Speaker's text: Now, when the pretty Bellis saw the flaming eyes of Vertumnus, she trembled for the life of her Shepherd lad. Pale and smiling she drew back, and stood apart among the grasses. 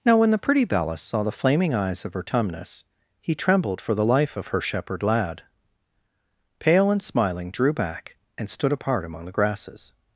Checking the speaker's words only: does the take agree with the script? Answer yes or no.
no